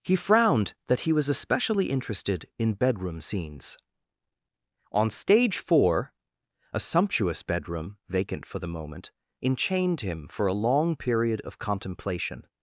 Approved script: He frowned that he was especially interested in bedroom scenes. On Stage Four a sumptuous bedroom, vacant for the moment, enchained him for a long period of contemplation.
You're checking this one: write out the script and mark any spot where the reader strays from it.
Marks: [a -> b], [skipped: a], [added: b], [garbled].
He frowned that he was especially interested in bedroom scenes. On Stage Four a sumptuous bedroom, vacant for the moment, enchained him for a long period of contemplation.